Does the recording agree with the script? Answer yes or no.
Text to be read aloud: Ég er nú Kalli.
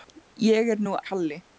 yes